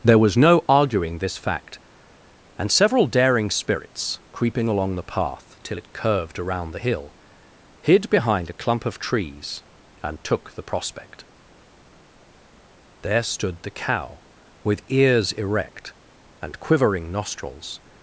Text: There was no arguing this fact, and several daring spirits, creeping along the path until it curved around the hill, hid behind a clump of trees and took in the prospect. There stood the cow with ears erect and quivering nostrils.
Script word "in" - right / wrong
wrong